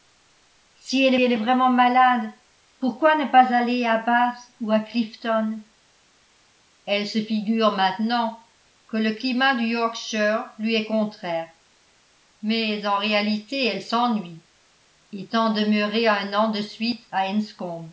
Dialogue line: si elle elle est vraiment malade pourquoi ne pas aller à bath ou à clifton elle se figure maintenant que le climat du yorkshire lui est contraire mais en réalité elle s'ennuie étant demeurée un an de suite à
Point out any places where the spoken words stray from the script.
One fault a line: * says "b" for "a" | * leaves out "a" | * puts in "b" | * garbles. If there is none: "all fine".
all fine